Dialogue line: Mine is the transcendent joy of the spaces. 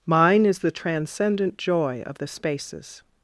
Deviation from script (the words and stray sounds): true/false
false